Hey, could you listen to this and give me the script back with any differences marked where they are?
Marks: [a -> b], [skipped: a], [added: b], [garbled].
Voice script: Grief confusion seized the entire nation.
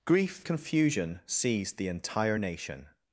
Grief confusion seized the entire nation.